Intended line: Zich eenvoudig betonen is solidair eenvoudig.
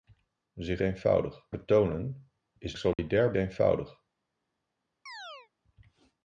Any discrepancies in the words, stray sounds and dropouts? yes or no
yes